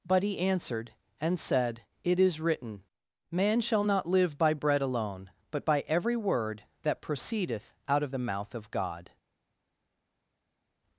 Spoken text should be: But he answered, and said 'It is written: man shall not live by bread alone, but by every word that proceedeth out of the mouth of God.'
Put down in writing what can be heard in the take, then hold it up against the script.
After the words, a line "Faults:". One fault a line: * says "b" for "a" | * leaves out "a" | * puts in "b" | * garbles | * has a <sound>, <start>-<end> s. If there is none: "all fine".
But he answered, and said 'It is written: man shall not live by bread alone, but by every word that proceedeth out of the mouth of God.'
Faults:
all fine